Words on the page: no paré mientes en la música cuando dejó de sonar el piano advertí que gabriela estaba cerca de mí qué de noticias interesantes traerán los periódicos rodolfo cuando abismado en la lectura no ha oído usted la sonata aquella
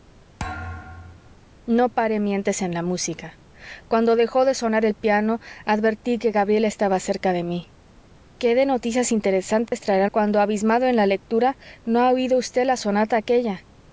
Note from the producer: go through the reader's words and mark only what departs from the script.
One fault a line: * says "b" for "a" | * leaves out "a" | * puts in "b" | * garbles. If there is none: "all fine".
* leaves out "los periódicos rodolfo"